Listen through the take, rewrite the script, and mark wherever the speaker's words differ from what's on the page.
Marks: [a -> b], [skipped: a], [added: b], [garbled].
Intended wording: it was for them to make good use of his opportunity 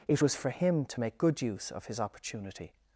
it was for [them -> him] to make good use of his opportunity